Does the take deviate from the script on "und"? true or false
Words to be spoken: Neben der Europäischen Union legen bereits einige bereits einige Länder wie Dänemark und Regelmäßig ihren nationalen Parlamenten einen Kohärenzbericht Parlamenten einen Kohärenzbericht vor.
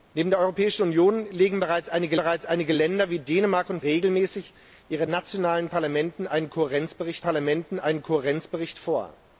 false